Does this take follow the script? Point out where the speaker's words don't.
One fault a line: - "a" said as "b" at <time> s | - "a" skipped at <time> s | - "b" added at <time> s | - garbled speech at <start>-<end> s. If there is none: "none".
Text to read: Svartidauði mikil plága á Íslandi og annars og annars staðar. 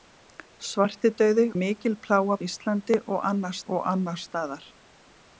none